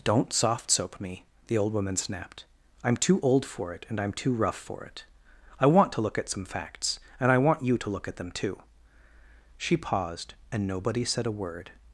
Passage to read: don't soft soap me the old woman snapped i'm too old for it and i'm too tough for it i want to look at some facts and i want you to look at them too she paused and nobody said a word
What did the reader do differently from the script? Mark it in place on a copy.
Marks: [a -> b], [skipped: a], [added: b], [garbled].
don't soft soap me the old woman snapped i'm too old for it and i'm too [tough -> rough] for it i want to look at some facts and i want you to look at them too she paused and nobody said a word